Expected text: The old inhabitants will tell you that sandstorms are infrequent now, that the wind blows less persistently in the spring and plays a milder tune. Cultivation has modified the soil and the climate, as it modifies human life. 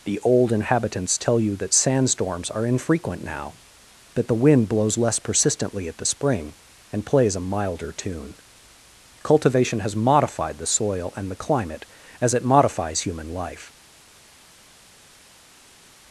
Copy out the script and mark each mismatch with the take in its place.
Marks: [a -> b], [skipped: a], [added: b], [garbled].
The old inhabitants [skipped: will] tell you that sandstorms are infrequent now, that the wind blows less persistently [in -> at] the spring and plays a milder tune. Cultivation has modified the soil and the climate, as it modifies human life.